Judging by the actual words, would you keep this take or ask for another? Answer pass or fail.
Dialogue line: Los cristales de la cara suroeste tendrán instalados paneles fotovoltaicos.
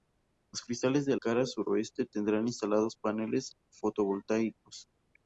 fail